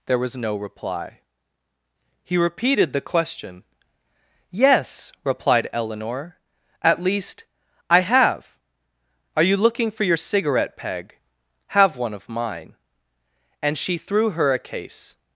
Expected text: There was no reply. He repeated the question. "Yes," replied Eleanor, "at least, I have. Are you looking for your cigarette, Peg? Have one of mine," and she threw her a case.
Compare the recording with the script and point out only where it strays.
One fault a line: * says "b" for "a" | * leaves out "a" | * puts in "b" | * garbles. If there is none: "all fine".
all fine